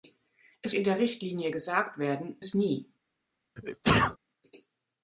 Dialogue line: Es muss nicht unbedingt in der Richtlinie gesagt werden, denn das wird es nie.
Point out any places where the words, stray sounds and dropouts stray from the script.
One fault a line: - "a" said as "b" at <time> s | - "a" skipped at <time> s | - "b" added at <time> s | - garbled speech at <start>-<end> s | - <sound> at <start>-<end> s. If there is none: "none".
- "muss nicht unbedingt" skipped at 0.7 s
- "denn das wird" skipped at 2.4 s
- sneeze at 3.6-4.2 s